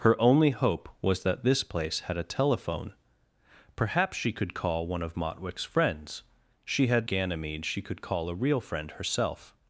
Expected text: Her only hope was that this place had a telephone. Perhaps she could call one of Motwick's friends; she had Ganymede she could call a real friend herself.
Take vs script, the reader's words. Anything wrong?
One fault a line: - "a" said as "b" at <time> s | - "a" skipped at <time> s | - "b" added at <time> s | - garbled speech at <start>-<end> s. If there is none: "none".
none